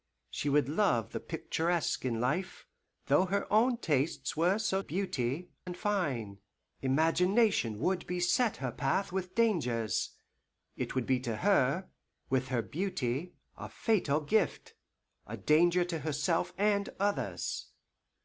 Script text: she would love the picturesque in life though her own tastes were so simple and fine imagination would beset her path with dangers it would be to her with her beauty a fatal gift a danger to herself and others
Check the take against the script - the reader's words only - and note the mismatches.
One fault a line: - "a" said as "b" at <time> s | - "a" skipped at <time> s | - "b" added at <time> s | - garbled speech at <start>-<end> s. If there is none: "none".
- "simple" said as "beauty" at 4.8 s